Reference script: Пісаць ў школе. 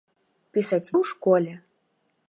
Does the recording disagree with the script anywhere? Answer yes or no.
no